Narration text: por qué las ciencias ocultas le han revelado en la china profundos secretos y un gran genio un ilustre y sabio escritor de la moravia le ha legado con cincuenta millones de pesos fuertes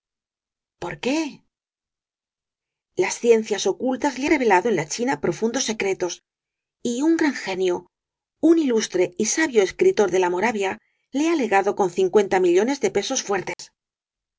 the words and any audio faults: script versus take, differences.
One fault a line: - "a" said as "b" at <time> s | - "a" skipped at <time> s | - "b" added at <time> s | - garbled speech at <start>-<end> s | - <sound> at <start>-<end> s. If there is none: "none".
- "han" skipped at 4.3 s
- dropout at 13.5-13.6 s